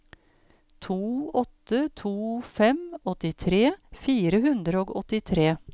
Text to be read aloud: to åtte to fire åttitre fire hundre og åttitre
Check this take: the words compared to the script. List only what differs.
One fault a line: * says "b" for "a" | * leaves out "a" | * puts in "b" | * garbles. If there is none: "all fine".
* says "fem" for "fire"